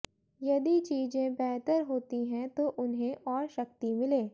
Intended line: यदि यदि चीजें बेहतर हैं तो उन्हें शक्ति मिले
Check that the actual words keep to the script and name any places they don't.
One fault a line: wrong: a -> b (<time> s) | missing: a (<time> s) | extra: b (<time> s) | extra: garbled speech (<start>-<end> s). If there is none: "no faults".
missing: यदि (0.8 s)
extra: होती (1.8 s)
extra: और (3.3 s)